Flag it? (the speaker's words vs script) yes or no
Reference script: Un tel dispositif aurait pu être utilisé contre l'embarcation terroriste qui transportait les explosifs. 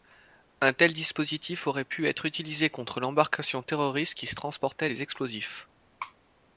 no